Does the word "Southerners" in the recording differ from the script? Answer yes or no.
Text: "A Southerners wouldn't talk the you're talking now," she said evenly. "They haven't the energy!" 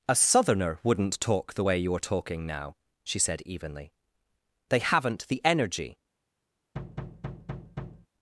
yes